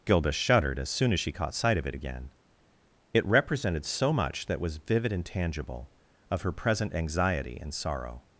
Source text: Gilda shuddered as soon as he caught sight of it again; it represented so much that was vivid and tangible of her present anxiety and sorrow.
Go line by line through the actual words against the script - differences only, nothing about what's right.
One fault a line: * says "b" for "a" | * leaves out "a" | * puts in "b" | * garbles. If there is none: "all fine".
* says "she" for "he"